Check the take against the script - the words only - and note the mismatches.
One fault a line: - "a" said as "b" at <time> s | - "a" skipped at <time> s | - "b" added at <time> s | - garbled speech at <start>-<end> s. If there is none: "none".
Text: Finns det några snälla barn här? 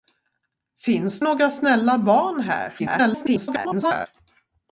- "det" skipped at 1.2 s
- garbled speech at 2.8-4.1 s